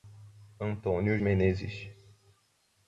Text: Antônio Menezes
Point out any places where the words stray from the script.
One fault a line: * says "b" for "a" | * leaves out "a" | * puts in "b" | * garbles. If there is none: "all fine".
all fine